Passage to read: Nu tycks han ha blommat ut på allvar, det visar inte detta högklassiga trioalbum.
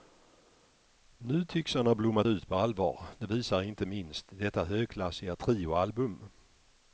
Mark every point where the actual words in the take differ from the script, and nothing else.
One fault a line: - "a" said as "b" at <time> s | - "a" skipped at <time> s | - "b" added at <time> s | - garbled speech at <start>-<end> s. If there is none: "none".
- "minst" added at 3.9 s